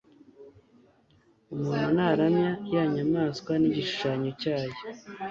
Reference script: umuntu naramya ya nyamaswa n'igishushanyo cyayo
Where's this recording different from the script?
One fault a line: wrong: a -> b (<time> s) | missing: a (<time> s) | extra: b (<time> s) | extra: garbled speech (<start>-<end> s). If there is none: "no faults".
no faults